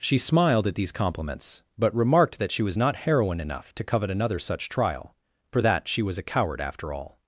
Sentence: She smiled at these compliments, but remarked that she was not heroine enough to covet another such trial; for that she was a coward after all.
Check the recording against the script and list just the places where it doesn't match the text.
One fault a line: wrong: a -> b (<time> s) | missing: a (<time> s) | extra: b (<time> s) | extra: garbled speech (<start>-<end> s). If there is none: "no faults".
no faults